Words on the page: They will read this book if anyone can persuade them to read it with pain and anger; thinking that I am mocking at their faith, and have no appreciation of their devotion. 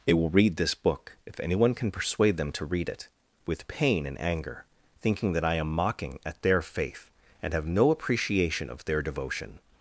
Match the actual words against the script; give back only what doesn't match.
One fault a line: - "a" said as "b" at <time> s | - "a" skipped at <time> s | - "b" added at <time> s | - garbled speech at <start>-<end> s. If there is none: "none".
none